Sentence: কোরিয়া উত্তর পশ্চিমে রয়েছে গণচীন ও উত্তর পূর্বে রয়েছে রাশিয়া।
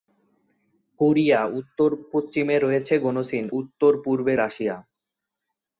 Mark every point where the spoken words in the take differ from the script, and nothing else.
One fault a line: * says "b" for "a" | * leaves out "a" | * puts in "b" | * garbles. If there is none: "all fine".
* leaves out "ও"
* leaves out "রয়েছে"